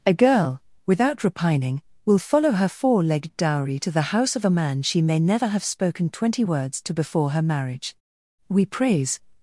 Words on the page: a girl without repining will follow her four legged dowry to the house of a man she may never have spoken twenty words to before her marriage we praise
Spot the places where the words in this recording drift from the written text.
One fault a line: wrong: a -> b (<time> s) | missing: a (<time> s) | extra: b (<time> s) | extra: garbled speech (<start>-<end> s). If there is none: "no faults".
no faults